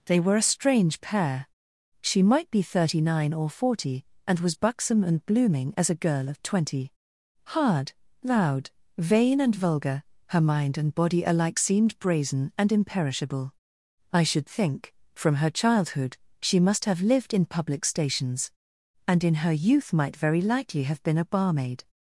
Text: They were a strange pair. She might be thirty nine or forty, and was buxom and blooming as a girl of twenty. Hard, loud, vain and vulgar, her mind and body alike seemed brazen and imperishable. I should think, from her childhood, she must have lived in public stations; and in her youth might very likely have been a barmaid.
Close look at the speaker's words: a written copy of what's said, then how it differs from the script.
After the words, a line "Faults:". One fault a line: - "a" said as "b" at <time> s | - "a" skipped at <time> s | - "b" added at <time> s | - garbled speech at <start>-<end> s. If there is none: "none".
They were a strange pair. She might be thirty nine or forty, and was buxom and blooming as a girl of twenty. Hard, loud, vain and vulgar, her mind and body alike seemed brazen and imperishable. I should think, from her childhood, she must have lived in public stations; and in her youth might very likely have been a barmaid.
Faults:
none